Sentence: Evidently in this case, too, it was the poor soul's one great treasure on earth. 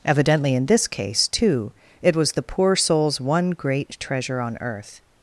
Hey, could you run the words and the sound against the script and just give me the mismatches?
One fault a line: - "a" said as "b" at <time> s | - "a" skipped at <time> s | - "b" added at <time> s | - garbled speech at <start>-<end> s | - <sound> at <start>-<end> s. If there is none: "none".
none